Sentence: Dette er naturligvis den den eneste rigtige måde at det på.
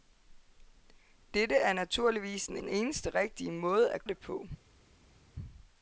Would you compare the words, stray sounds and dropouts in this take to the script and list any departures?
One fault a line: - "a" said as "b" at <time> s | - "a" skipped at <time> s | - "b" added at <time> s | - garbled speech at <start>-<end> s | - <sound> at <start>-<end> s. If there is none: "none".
none